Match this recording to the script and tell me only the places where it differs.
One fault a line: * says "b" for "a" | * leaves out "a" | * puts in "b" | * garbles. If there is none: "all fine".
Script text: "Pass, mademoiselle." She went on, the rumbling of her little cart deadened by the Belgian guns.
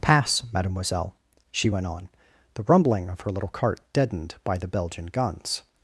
all fine